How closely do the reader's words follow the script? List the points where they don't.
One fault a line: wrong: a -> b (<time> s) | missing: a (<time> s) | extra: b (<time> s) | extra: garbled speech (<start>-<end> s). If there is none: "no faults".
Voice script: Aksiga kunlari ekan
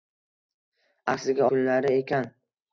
no faults